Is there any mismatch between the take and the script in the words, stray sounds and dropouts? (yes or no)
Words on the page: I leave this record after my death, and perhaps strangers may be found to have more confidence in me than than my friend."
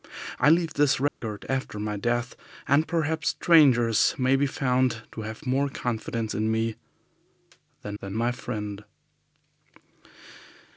yes